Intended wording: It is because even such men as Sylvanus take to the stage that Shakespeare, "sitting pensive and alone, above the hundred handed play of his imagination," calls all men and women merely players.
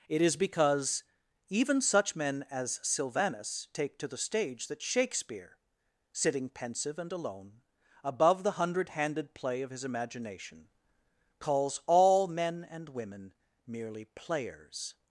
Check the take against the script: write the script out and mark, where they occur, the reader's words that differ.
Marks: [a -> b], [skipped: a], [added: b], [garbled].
It is because even such men as Sylvanus take to the stage that Shakespeare, "sitting pensive and alone, above the hundred handed play of his imagination," calls all men and women merely players.